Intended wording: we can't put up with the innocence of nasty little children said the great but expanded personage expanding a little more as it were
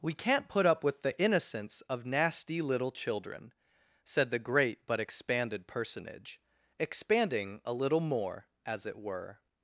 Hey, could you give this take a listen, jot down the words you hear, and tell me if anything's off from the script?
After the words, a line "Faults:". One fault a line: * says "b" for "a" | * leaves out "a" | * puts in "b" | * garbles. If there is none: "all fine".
we can't put up with the innocence of nasty little children said the great but expanded personage expanding a little more as it were
Faults:
all fine